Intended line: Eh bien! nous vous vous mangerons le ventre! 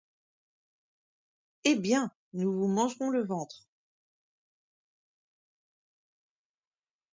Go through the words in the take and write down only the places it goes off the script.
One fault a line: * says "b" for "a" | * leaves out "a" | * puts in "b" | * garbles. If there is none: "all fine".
* leaves out "vous"